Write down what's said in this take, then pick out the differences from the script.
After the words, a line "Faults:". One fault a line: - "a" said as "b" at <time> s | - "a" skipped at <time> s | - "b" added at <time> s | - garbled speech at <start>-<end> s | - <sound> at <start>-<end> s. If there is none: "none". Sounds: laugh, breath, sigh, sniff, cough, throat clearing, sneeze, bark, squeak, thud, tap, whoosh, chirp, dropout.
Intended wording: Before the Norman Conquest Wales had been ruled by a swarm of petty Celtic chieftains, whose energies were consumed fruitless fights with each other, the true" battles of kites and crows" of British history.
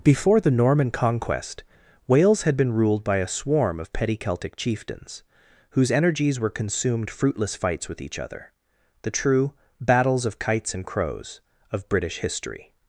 Before the Norman Conquest Wales had been ruled by a swarm of petty Celtic chieftains, whose energies were consumed fruitless fights with each other, the true" battles of kites and crows" of British history.
Faults:
none